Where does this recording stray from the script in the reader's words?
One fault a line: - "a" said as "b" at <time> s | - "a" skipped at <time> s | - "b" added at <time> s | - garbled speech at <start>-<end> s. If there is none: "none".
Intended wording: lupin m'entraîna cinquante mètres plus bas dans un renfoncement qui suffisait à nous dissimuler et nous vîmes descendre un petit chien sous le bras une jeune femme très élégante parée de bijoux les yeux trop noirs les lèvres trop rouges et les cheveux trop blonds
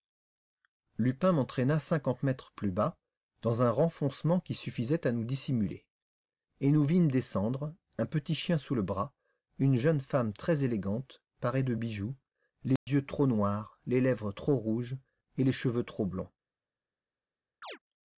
none